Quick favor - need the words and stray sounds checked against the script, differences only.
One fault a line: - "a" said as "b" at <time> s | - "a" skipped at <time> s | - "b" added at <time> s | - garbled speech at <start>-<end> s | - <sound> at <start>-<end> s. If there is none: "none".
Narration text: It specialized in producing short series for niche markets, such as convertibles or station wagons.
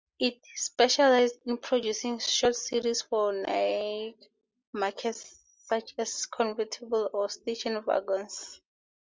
none